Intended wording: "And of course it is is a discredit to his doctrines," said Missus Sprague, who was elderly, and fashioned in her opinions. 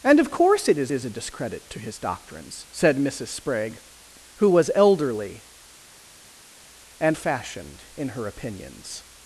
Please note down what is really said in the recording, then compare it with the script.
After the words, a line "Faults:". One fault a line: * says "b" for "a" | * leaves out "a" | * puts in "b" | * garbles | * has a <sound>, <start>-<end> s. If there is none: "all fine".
"And of course it is is a discredit to his doctrines," said Missus Sprague, who was elderly, and fashioned in her opinions.
Faults:
all fine